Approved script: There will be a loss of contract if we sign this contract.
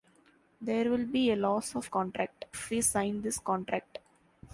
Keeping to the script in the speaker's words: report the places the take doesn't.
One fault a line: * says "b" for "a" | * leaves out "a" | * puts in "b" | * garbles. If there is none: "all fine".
all fine